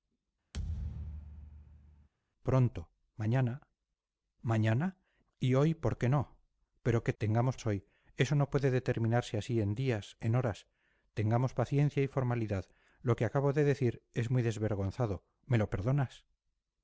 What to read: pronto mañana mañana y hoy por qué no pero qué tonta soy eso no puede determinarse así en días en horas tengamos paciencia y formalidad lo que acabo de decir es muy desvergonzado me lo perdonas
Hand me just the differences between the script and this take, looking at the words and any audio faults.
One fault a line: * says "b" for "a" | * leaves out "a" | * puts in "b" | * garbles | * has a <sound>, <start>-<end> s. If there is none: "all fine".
* has a thud, 0.5-2.1 s
* says "tengamos" for "tonta"